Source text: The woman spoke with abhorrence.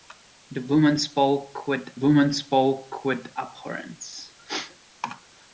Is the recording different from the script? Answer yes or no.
yes